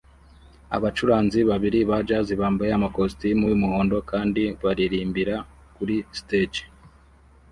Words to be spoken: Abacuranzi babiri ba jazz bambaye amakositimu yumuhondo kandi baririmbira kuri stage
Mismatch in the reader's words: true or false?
false